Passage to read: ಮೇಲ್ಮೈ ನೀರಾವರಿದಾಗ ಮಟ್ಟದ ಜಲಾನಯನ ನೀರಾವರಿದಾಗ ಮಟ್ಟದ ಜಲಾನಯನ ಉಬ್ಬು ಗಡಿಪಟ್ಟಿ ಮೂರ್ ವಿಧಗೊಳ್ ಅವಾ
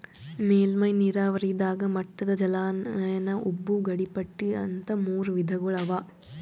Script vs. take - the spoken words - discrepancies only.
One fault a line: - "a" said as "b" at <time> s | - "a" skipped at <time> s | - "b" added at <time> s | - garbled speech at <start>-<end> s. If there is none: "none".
- "ನೀರಾವರಿದಾಗ ಮಟ್ಟದ ಜಲಾನಯನ" skipped at 3.3 s
- "ಅಂತ್" added at 4.6 s